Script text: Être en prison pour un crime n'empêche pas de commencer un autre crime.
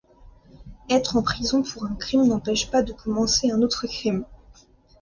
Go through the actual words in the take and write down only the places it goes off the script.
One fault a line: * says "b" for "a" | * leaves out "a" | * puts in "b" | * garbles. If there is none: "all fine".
all fine